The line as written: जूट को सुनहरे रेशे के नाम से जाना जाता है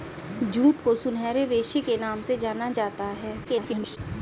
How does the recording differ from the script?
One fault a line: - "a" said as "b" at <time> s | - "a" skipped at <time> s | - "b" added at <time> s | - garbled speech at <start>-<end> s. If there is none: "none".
- garbled speech at 3.4-4.0 s